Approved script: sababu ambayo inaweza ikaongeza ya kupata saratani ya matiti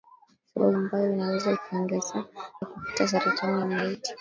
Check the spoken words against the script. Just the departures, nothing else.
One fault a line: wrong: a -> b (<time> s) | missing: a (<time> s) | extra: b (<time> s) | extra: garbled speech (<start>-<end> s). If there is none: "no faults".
no faults